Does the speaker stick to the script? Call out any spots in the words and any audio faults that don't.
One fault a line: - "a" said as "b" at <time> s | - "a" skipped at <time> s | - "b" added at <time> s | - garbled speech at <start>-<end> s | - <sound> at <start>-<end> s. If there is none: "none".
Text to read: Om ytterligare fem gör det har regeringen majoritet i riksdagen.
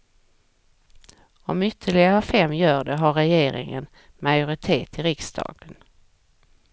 none